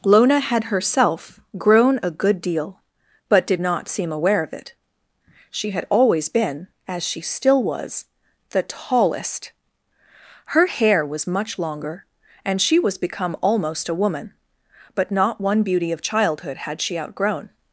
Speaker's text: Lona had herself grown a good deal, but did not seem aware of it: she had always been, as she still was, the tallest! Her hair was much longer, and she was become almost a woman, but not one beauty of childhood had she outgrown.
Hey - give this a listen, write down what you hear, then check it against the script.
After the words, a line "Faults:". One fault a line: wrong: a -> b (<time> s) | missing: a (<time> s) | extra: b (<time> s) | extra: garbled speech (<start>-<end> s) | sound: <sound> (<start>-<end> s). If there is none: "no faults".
Lona had herself grown a good deal, but did not seem aware of it: she had always been, as she still was, the tallest! Her hair was much longer, and she was become almost a woman, but not one beauty of childhood had she outgrown.
Faults:
no faults